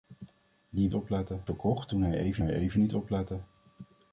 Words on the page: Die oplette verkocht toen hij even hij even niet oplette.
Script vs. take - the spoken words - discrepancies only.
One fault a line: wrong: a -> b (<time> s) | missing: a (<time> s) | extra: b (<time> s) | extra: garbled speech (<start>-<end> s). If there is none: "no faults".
no faults